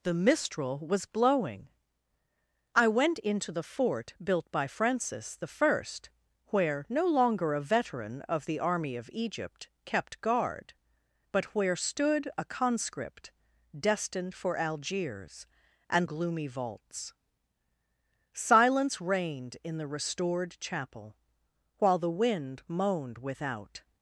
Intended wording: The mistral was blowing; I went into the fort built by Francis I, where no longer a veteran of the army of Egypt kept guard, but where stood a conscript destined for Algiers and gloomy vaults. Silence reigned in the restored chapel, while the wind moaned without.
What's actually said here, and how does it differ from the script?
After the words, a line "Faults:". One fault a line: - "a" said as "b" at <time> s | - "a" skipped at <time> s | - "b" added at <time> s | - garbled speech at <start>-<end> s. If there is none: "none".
The mistral was blowing; I went into the fort built by Francis I, where no longer a veteran of the army of Egypt kept guard, but where stood a conscript destined for Algiers and gloomy vaults. Silence reigned in the restored chapel, while the wind moaned without.
Faults:
none